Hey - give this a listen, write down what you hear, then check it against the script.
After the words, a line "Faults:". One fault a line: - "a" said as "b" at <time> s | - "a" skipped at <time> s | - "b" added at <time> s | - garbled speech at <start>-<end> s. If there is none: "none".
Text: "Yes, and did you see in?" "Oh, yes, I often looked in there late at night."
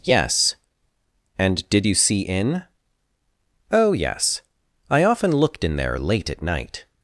"Yes, and did you see in?" "Oh, yes, I often looked in there late at night."
Faults:
none